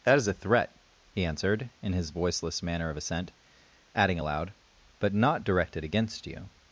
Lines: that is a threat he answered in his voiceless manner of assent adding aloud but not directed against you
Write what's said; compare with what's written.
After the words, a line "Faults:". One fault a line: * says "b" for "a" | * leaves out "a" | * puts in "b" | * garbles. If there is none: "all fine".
that is a threat he answered in his voiceless manner of assent adding aloud but not directed against you
Faults:
all fine